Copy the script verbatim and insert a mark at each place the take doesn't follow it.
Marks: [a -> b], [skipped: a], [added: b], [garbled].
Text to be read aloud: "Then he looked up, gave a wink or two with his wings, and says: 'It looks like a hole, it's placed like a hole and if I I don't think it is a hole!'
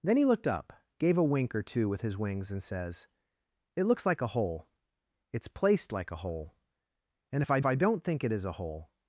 "Then he looked up, gave a wink or two with his wings, and says: 'It looks like a hole, it's placed like a hole and if I I don't think it is a hole!'